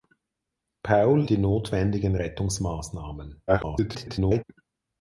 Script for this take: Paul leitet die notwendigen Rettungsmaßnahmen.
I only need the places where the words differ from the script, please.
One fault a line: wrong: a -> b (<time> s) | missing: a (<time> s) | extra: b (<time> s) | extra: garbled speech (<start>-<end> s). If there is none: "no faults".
missing: leitet (1.2 s)
extra: garbled speech (3.5-4.4 s)